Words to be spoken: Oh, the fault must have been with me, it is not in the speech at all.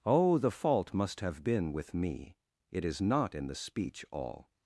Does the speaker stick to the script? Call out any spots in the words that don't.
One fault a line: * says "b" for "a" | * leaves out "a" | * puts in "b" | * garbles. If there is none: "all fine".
* leaves out "at"